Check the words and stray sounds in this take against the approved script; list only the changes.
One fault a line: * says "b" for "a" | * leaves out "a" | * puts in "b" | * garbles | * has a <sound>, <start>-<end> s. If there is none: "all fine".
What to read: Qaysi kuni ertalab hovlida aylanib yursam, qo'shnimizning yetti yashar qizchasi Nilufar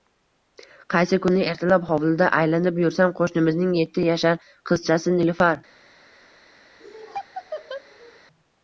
* has a laugh, 6.8-8.2 s